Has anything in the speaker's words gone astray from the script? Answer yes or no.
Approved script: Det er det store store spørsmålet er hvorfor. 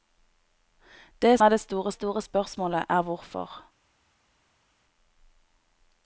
no